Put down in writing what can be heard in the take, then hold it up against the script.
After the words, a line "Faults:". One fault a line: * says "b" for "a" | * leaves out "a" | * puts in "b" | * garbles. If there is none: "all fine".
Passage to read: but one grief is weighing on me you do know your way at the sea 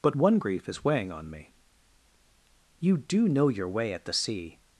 but one grief is weighing on me you do know your way at the sea
Faults:
all fine